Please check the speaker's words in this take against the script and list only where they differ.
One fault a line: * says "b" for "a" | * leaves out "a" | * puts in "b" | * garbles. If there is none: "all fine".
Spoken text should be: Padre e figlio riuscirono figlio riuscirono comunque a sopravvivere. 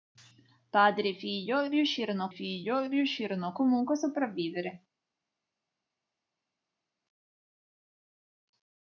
all fine